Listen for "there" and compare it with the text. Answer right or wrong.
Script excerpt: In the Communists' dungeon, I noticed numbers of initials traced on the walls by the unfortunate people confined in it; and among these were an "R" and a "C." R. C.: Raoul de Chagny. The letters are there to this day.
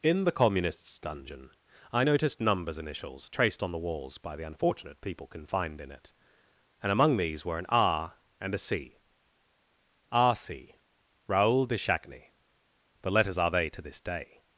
wrong